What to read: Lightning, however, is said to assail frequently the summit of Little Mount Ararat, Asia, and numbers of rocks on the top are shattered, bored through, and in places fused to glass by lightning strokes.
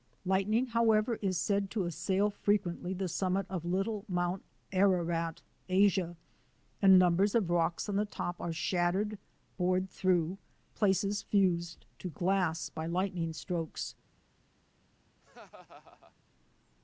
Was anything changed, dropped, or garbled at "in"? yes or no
yes